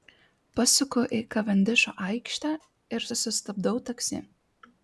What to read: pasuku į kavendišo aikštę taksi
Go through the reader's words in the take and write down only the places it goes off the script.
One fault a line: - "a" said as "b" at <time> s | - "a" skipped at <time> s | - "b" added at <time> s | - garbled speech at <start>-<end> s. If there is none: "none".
- "ir susistabdau" added at 3.0 s